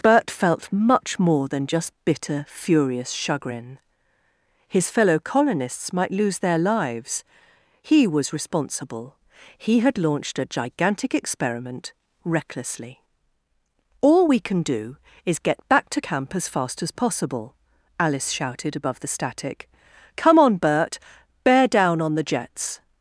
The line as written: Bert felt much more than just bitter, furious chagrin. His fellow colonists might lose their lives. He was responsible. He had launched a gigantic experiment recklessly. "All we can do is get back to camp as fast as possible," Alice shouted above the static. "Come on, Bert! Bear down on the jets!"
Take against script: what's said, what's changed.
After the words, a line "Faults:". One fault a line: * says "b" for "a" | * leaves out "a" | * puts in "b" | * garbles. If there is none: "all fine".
Bert felt much more than just bitter, furious chagrin. His fellow colonists might lose their lives. He was responsible. He had launched a gigantic experiment recklessly. "All we can do is get back to camp as fast as possible," Alice shouted above the static. "Come on, Bert! Bear down on the jets!"
Faults:
all fine